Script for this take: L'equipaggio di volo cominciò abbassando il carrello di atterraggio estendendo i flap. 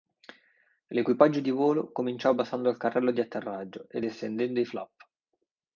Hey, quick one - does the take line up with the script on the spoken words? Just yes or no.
no